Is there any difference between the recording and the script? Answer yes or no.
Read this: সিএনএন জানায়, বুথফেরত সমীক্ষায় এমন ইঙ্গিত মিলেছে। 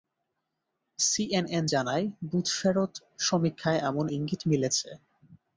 no